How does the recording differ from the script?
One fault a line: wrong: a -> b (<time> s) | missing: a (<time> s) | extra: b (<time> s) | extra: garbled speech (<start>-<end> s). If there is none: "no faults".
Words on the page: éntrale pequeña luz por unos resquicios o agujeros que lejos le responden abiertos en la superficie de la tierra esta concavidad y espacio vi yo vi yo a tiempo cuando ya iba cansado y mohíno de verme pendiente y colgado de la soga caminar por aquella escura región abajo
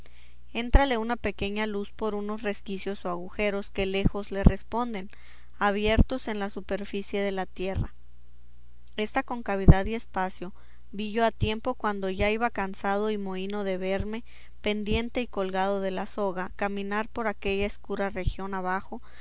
extra: una (1.0 s)
missing: vi yo (11.2 s)